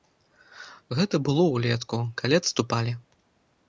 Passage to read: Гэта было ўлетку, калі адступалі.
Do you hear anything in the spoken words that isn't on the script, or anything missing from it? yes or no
no